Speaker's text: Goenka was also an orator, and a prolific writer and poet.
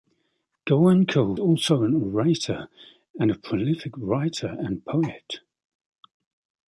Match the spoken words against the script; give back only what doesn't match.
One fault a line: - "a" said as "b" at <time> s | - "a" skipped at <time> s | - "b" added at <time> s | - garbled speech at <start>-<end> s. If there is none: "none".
- "was" skipped at 1.4 s